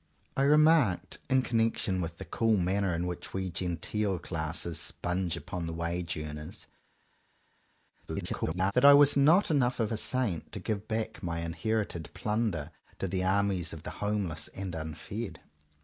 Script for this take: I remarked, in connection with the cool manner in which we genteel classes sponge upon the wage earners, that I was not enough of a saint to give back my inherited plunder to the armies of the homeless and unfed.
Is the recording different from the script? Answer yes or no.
yes